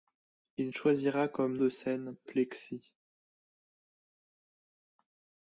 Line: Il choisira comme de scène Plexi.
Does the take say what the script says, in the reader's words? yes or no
yes